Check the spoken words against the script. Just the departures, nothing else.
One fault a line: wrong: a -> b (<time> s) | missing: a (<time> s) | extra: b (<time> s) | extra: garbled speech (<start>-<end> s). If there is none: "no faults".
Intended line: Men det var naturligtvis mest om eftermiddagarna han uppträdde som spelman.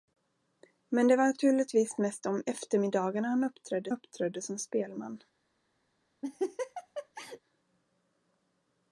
extra: uppträdde (3.9 s)